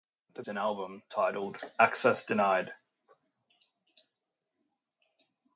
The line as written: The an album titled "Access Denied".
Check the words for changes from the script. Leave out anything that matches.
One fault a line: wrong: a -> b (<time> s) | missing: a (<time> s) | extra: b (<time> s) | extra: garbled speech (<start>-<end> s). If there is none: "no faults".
no faults